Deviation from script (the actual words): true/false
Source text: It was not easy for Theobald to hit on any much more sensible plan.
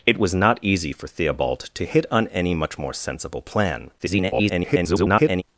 true